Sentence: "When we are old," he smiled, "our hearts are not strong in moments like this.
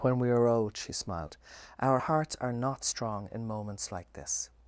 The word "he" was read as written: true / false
false